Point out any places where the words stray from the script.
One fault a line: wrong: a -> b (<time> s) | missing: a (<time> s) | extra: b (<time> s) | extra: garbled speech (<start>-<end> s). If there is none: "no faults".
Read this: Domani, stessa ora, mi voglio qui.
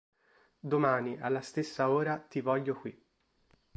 extra: alla (1.2 s)
wrong: mi -> ti (2.2 s)